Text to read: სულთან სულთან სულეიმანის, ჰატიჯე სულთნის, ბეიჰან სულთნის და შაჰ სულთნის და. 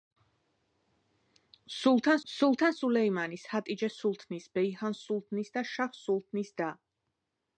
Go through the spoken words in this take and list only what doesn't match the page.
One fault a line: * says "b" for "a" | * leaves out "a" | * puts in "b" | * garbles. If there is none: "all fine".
all fine